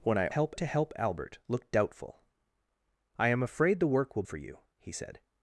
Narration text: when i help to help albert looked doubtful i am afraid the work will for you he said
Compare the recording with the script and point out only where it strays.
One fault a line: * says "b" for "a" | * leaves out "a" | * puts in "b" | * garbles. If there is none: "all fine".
all fine